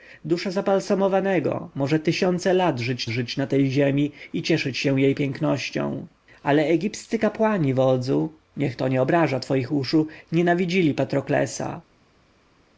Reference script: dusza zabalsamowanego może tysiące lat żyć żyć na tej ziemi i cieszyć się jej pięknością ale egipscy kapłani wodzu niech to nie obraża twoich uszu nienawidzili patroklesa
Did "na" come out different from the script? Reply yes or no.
no